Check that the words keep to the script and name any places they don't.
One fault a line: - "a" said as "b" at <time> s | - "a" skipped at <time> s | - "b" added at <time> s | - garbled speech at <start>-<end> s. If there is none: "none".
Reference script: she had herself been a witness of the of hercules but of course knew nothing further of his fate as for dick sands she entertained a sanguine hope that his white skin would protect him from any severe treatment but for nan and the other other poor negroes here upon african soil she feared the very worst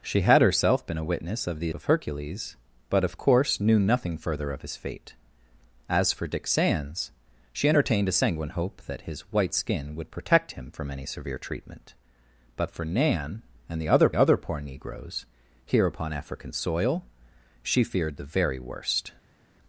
none